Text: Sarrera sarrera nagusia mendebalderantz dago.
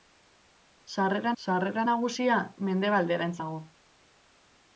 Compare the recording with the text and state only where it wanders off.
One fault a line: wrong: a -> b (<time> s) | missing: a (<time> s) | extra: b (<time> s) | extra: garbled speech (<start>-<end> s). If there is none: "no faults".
no faults